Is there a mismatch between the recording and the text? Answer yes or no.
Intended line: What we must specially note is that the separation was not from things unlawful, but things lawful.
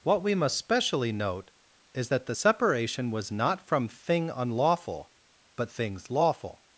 yes